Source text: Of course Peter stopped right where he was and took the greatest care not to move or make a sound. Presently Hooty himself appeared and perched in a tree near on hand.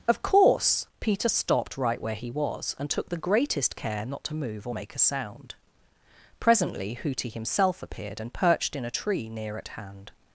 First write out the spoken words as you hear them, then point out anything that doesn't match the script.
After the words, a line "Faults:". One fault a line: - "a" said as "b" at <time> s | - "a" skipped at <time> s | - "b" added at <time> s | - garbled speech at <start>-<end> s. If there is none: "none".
Of course Peter stopped right where he was and took the greatest care not to move or make a sound. Presently Hooty himself appeared and perched in a tree near at hand.
Faults:
- "on" said as "at" at 9.6 s